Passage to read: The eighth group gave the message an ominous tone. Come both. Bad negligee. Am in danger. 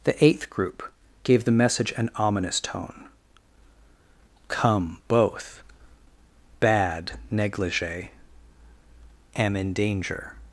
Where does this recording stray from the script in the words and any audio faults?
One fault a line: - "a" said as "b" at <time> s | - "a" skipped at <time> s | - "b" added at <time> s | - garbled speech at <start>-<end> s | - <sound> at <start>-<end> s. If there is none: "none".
none